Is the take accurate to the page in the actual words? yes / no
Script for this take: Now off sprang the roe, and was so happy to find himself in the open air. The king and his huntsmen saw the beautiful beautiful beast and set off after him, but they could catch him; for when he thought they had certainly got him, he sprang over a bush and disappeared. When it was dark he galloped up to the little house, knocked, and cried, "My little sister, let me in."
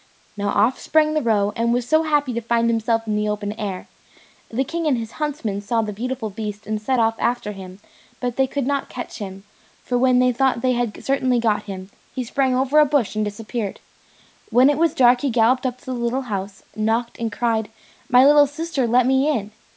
no